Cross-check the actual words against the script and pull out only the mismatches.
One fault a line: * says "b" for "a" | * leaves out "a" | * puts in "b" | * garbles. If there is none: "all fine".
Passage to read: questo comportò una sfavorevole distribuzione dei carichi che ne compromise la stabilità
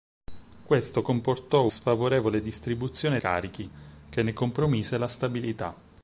* leaves out "una"
* leaves out "dei"